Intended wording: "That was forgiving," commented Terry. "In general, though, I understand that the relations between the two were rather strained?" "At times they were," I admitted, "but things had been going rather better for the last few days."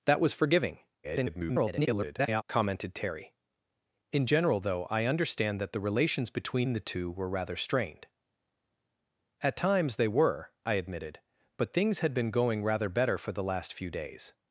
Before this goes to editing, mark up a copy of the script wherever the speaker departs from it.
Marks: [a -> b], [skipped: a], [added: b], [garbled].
"That was forgiving," [garbled] commented Terry. "In general, though, I understand that the relations between the two were rather strained?" "At times they were," I admitted, "but things had been going rather better for the last few days."